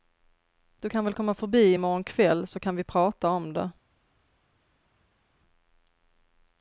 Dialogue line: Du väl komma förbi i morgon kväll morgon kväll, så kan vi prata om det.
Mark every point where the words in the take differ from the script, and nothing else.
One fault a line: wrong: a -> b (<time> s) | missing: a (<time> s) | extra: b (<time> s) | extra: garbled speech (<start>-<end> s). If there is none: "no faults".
extra: kan (0.9 s)
missing: morgon kväll (2.5 s)